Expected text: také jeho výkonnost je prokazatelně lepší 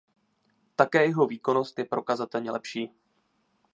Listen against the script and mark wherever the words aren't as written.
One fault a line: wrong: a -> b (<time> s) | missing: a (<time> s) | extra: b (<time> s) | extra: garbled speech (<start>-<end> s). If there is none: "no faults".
no faults